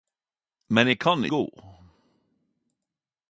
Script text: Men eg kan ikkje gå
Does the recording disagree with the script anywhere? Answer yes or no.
yes